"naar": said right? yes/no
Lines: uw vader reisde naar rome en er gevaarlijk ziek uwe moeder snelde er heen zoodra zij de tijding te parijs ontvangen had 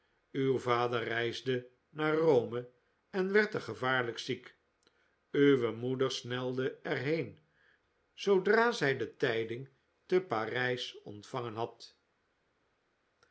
yes